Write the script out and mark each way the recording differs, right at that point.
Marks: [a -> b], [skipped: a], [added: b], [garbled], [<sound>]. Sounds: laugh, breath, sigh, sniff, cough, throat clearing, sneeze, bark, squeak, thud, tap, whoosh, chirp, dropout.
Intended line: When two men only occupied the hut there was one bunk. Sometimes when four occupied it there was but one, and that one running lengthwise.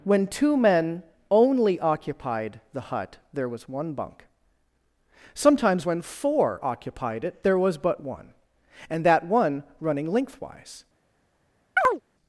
When two men only occupied the hut there was one bunk. Sometimes when four occupied it there was but one, and that one running lengthwise. [chirp]